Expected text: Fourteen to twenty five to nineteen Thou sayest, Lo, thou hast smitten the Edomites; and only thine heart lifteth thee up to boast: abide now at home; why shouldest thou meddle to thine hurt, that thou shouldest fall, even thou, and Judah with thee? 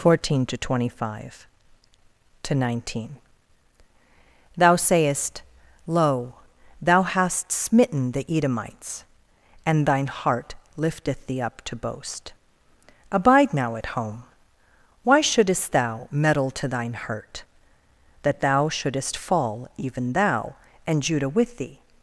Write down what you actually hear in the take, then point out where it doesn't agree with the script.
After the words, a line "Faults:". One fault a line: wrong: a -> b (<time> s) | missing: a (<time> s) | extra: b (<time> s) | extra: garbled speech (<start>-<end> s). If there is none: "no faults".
Fourteen to twenty five to nineteen Thou sayest, Lo, thou hast smitten the Edomites; and thine heart lifteth thee up to boast: abide now at home; why shouldest thou meddle to thine hurt, that thou shouldest fall, even thou, and Judah with thee?
Faults:
missing: only (9.8 s)